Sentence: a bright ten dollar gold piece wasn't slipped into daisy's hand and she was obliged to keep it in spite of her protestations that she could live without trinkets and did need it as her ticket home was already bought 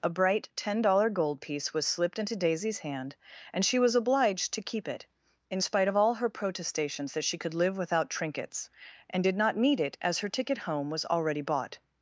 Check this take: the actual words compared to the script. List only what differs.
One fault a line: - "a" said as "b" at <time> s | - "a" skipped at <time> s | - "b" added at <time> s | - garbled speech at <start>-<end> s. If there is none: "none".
- "wasn't" said as "was" at 1.8 s
- "all" added at 6.0 s
- "not" added at 9.4 s